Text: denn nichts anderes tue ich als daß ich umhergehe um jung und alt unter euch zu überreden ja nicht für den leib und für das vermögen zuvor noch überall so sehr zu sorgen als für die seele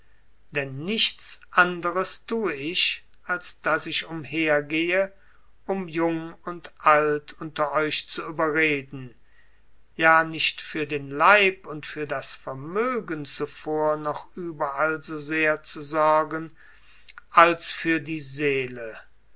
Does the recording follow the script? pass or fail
pass